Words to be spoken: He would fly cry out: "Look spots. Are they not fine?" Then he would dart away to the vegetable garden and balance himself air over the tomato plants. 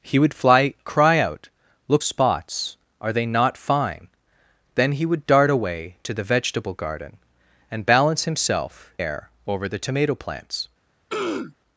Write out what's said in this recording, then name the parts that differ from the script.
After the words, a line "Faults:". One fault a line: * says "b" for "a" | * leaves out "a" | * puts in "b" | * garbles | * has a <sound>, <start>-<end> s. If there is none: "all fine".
He would fly cry out: "Look spots. Are they not fine?" Then he would dart away to the vegetable garden and balance himself air over the tomato plants.
Faults:
* has a throat clearing, 11.1-11.6 s